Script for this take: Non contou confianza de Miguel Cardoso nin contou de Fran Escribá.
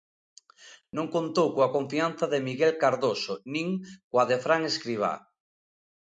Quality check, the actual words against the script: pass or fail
fail